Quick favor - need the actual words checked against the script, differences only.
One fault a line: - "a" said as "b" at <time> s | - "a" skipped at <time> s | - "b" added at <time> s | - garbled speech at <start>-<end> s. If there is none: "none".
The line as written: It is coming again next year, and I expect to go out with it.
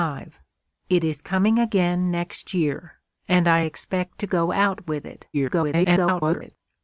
- garbled speech at 5.3-6.6 s